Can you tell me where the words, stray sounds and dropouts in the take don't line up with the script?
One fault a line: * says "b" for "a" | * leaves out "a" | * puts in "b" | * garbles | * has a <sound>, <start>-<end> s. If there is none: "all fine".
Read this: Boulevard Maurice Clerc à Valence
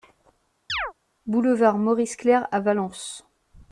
* has a chirp, 0.7-0.9 s